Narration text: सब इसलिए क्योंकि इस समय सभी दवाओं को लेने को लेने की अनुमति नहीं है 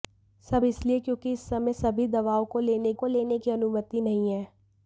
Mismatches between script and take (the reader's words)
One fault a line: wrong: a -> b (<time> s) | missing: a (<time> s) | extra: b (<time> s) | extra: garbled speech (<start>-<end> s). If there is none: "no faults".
no faults